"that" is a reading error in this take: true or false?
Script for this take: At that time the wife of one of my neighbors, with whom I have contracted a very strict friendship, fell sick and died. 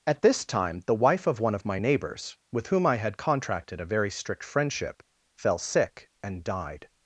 true